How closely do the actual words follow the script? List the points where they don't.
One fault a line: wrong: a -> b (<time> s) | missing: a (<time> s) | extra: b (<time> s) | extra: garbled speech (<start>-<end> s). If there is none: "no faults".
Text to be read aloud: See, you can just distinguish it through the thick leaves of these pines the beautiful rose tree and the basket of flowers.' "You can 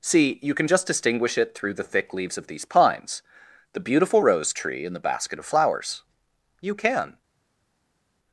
no faults